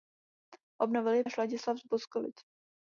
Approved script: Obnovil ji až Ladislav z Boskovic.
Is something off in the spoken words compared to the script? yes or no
no